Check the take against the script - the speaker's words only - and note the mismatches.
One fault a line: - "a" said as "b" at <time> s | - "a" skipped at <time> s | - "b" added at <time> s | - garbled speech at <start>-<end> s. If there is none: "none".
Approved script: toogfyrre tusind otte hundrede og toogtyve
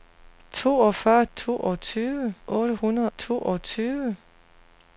- "tusind" said as "toogtyve" at 1.3 s
- "og" skipped at 3.1 s